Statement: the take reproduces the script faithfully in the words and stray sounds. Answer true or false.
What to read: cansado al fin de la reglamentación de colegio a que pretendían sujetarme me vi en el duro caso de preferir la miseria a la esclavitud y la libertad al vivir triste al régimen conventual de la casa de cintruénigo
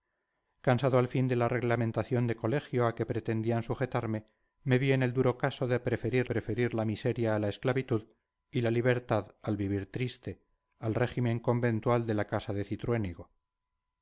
false